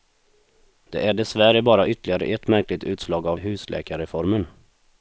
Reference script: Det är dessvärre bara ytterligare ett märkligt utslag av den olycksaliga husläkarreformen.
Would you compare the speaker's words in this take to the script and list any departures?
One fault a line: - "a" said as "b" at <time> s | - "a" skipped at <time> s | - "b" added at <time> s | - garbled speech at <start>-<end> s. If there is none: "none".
- "den olycksaliga" skipped at 3.4 s